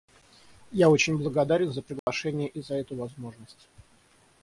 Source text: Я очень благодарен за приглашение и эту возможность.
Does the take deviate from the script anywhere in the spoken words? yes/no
yes